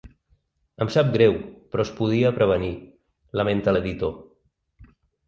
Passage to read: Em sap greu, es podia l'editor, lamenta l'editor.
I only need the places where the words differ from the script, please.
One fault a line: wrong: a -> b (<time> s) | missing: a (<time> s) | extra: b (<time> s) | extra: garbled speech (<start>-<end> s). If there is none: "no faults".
extra: però (1.7 s)
wrong: l'editor -> prevenir (2.4 s)